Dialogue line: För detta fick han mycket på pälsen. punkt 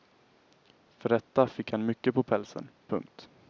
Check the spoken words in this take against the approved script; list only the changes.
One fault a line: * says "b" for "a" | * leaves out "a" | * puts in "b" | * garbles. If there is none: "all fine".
all fine